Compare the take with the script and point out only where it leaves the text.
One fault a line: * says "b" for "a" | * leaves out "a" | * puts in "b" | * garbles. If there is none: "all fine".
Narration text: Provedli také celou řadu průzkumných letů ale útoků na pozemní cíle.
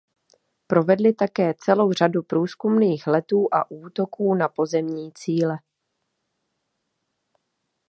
* says "a" for "ale"